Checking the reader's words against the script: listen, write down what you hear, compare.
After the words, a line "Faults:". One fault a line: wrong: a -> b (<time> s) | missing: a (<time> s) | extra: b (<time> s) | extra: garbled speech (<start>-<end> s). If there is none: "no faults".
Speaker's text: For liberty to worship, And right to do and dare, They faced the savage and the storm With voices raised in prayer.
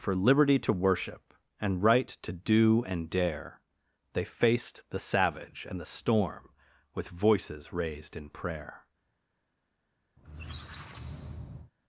For liberty to worship, And right to do and dare, They faced the savage and the storm With voices raised in prayer.
Faults:
no faults